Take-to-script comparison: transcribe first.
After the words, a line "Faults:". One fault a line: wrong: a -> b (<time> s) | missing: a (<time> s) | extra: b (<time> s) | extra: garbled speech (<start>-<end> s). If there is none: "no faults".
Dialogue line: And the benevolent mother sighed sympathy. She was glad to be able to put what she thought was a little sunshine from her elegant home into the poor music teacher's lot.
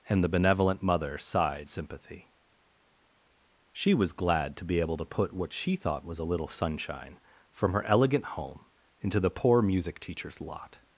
And the benevolent mother sighed sympathy. She was glad to be able to put what she thought was a little sunshine from her elegant home into the poor music teacher's lot.
Faults:
no faults